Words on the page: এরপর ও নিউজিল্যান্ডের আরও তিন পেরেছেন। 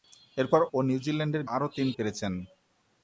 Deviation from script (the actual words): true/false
false